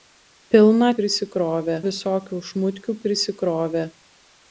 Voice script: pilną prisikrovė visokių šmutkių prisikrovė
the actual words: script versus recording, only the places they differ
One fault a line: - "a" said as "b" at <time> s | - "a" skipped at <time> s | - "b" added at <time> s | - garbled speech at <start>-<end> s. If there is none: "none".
none